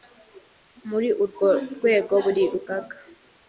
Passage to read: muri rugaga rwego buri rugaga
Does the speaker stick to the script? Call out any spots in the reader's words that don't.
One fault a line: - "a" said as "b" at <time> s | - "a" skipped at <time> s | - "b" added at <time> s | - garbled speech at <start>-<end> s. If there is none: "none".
- "rugaga" said as "urwo" at 1.2 s